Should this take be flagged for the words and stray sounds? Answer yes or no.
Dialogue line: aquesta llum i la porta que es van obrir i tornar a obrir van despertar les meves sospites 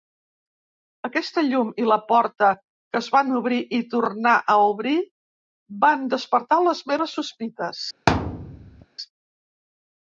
yes